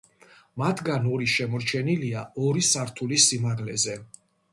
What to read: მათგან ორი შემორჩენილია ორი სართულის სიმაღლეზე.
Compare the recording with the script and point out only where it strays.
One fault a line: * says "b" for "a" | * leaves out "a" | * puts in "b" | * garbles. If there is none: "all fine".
all fine